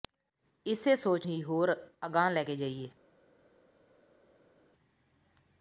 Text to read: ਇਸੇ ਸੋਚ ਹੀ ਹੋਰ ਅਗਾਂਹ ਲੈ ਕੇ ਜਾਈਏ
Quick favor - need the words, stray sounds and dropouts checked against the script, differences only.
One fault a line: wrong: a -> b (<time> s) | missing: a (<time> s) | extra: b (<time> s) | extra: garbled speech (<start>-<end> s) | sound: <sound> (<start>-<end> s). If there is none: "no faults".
no faults